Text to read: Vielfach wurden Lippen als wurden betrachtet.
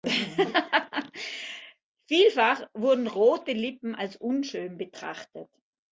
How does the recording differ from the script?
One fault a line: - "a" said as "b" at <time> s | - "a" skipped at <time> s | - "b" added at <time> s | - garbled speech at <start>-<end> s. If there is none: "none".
- "rote" added at 3.1 s
- "wurden" said as "unschön" at 4.2 s